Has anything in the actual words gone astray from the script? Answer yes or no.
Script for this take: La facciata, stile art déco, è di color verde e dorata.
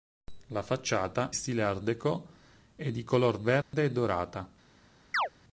no